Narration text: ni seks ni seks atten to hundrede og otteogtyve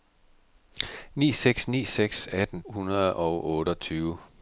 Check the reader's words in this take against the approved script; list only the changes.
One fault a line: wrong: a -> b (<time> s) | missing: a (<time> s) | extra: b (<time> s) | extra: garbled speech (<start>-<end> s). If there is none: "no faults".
missing: to (2.6 s)